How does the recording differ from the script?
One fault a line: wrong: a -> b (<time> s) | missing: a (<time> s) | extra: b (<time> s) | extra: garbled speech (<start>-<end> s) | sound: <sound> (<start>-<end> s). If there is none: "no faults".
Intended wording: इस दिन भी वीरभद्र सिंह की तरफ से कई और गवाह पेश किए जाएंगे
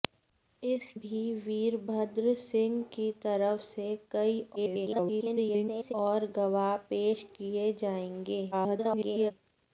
missing: दिन (0.8 s)
extra: garbled speech (4.6-5.9 s)
extra: garbled speech (8.5-9.3 s)